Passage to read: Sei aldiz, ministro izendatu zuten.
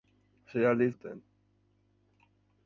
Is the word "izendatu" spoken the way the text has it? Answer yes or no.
no